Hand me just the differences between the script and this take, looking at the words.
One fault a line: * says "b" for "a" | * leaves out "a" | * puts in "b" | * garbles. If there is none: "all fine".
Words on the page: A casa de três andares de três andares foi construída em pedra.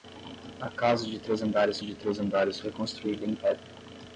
all fine